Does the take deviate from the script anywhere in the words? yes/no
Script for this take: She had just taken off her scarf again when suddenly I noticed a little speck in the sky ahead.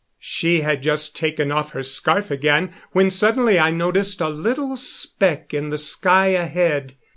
no